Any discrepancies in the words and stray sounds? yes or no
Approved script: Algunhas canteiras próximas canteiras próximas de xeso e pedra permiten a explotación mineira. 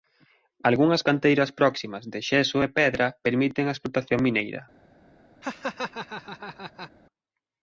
yes